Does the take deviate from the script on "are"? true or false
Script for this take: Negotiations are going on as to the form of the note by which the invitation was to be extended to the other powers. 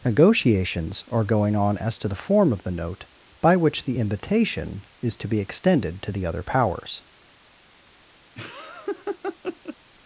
false